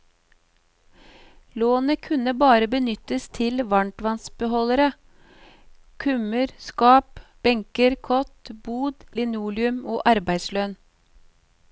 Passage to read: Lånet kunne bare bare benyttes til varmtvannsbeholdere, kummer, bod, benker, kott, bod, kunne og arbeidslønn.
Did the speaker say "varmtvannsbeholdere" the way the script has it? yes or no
yes